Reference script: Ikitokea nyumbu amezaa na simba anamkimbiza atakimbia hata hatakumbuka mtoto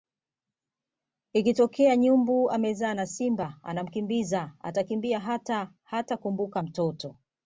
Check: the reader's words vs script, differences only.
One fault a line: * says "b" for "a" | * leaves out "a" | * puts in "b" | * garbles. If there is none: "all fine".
all fine